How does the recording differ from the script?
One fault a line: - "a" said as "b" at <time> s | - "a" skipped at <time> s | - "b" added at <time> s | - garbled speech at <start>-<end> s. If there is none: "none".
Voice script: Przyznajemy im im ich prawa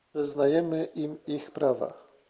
- "im" skipped at 1.2 s